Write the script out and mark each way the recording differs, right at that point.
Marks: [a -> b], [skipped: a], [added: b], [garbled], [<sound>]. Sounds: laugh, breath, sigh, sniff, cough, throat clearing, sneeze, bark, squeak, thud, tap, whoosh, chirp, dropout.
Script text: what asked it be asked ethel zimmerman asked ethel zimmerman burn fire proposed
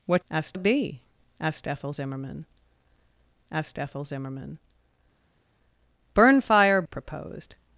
what asked it be asked ethel zimmerman asked ethel zimmerman burn fire proposed